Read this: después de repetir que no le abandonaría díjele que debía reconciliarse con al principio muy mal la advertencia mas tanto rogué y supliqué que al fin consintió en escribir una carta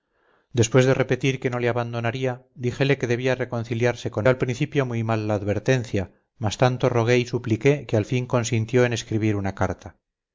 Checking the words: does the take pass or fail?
pass